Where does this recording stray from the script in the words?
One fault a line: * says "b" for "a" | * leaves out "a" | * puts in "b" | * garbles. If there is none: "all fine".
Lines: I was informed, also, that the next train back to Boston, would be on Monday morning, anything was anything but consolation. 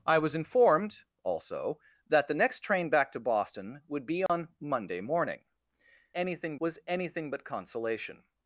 all fine